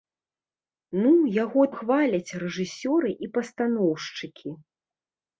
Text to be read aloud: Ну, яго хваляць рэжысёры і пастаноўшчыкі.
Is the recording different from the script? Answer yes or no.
no